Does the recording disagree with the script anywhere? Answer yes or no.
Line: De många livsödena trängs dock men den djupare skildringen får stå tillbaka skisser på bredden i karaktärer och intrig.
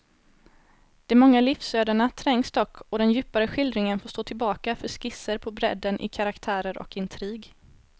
yes